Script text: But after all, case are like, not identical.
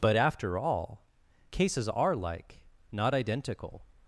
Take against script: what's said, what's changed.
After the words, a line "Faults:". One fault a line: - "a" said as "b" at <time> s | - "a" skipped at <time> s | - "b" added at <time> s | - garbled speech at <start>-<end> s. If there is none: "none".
But after all, cases are like, not identical.
Faults:
- "case" said as "cases" at 1.5 s